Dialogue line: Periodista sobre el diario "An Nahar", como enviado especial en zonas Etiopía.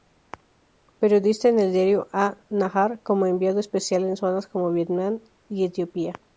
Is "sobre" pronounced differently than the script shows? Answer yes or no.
yes